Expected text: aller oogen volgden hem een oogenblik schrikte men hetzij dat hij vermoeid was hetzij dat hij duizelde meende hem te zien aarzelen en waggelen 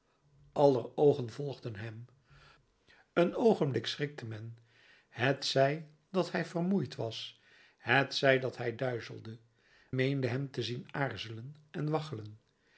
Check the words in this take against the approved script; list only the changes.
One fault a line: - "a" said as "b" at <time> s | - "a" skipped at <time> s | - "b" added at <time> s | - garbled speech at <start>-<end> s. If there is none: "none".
none